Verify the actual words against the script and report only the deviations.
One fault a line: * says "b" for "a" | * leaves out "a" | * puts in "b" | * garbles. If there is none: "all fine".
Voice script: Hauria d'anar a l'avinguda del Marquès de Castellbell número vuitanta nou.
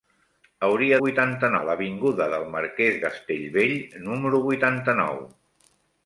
* says "vuitanta" for "d'anar"
* leaves out "de"